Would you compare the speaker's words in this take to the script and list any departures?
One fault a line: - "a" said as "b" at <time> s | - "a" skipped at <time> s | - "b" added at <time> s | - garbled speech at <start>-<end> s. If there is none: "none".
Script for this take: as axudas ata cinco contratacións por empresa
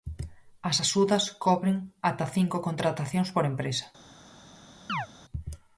- "cobren" added at 1.4 s